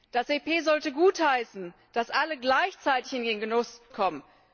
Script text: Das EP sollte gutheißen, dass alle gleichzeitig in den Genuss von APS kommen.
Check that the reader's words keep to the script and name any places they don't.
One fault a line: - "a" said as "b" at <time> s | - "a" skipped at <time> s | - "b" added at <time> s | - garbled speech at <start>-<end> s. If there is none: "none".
- "von APS" skipped at 3.8 s